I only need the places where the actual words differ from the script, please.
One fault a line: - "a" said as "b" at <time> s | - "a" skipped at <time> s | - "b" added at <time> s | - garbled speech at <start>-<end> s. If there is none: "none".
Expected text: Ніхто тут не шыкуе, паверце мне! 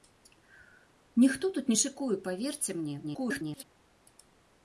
- garbled speech at 3.0-3.6 s